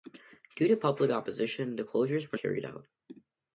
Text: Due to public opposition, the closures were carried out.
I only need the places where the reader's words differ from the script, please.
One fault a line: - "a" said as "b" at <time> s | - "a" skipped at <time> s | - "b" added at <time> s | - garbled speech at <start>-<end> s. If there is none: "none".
none